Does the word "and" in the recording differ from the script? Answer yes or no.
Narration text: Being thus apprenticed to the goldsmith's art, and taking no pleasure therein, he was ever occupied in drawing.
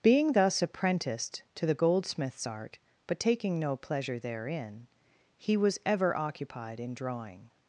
yes